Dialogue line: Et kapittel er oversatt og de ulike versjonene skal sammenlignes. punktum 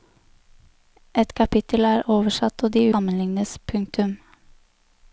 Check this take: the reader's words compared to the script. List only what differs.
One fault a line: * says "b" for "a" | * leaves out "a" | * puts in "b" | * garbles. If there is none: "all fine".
* leaves out "ulike versjonene skal"